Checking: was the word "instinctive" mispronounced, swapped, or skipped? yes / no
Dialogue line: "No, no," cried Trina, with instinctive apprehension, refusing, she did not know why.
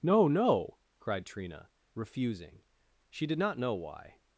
yes